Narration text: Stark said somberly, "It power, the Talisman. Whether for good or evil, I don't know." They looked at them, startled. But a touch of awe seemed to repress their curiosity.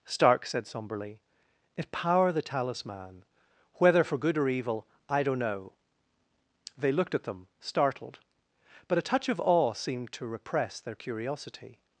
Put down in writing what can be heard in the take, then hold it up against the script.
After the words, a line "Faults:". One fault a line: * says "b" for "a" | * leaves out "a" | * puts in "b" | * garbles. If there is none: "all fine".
Stark said somberly, "It power, the Talisman. Whether for good or evil, I don't know." They looked at them, startled. But a touch of awe seemed to repress their curiosity.
Faults:
all fine